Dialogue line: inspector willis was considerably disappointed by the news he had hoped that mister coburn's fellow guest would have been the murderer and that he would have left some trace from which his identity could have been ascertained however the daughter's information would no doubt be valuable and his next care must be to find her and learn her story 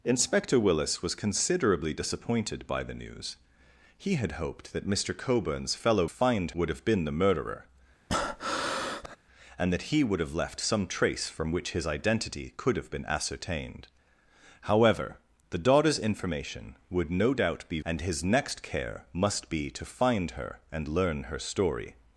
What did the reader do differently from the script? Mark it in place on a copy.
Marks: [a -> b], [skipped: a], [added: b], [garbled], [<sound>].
inspector willis was considerably disappointed by the news he had hoped that mister coburn's fellow [guest -> find] would have been the murderer [breath] and that he would have left some trace from which his identity could have been ascertained however the daughter's information would no doubt be [skipped: valuable] and his next care must be to find her and learn her story